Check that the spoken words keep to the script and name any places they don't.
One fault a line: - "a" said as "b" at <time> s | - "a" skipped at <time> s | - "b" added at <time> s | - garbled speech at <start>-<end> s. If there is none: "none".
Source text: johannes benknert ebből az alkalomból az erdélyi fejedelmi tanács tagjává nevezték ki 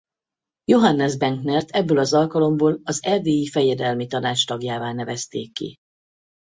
none